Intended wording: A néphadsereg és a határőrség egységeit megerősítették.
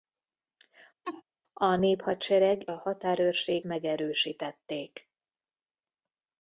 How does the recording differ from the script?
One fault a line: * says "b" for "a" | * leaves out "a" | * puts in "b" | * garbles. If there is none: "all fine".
* leaves out "és"
* leaves out "egységeit"